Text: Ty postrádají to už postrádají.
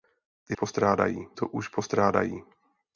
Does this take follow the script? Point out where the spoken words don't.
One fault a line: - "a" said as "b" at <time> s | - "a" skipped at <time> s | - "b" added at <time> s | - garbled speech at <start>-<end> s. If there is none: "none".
none